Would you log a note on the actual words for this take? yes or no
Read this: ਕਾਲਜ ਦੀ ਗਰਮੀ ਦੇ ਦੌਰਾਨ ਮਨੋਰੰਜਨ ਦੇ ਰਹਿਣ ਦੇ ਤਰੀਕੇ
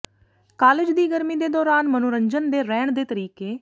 no